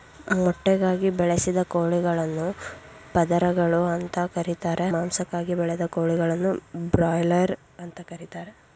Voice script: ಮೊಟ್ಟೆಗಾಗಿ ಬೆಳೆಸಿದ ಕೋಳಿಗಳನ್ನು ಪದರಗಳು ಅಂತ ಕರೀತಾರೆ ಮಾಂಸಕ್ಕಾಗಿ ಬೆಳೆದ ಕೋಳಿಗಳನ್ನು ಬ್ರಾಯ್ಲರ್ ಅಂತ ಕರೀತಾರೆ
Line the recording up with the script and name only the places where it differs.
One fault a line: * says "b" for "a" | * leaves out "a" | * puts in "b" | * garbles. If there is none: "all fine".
all fine